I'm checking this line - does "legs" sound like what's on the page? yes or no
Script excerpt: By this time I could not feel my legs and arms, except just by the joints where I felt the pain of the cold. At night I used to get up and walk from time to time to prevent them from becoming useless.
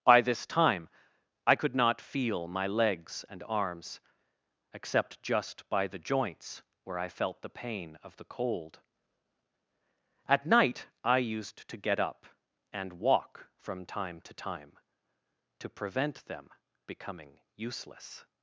yes